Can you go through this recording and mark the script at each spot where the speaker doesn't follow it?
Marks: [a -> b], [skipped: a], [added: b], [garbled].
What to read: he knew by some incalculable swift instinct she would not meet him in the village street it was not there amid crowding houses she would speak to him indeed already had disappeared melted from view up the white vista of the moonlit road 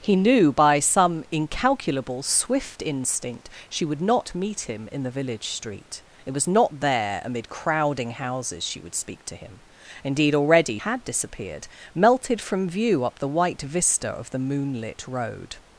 he knew by some incalculable swift instinct she would not meet him in the village street it was not there amid crowding houses she would speak to him indeed already had disappeared melted from view up the white vista of the moonlit road